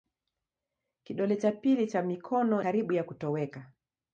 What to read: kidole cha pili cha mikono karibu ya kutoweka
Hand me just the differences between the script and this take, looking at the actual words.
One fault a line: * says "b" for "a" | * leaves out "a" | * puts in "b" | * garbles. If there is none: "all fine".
all fine